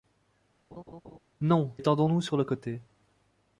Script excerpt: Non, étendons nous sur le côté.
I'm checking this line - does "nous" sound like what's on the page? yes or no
yes